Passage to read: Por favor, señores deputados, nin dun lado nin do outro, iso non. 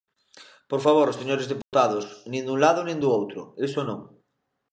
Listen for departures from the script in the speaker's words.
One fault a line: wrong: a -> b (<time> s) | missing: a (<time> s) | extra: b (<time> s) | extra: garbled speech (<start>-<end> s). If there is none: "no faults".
no faults